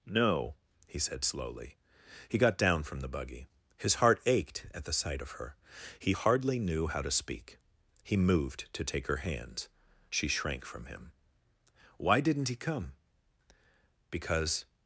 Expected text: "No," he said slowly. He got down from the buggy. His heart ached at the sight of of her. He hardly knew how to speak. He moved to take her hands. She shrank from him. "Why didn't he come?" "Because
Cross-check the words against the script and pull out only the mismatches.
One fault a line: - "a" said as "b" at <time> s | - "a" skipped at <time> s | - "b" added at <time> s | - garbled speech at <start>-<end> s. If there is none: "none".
- "of" skipped at 5.3 s